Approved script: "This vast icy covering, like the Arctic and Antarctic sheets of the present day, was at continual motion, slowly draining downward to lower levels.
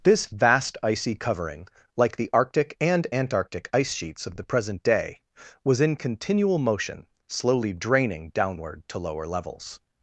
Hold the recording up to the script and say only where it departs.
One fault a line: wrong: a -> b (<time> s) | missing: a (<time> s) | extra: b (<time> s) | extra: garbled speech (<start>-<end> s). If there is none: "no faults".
extra: ice (3.7 s)
wrong: at -> in (5.8 s)